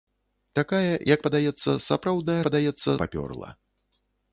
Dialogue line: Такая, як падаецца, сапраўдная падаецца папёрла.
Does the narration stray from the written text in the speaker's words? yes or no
no